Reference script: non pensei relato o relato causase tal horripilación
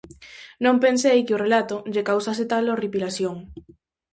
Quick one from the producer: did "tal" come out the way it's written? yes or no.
yes